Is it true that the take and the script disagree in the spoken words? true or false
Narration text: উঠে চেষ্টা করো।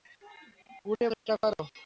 false